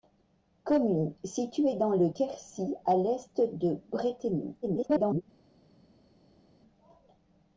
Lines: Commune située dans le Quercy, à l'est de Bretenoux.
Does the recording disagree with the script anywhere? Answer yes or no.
yes